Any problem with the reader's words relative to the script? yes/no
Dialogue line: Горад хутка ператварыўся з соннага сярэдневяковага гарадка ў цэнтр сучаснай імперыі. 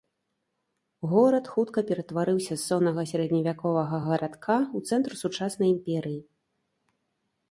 no